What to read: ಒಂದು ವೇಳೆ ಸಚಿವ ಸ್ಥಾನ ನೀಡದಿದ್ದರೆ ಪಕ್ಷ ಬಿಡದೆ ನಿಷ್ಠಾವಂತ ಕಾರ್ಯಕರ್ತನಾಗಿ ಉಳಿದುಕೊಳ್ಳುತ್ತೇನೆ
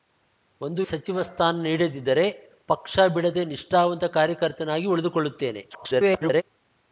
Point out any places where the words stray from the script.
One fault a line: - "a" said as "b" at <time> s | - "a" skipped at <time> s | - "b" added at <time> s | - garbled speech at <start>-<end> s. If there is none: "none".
- "ವೇಳೆ" skipped at 0.8 s
- garbled speech at 5.7-6.4 s